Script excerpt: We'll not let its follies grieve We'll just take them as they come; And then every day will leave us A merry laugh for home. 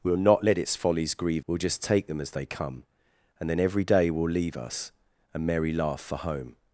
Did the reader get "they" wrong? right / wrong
right